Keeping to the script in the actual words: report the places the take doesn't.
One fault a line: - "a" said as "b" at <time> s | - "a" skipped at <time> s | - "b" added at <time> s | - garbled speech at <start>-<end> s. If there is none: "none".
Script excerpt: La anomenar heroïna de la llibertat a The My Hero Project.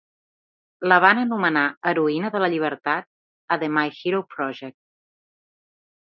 - "van" added at 1.0 s